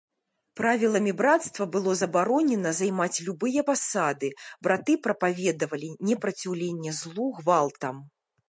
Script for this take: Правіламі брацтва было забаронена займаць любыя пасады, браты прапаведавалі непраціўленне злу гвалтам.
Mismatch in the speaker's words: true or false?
false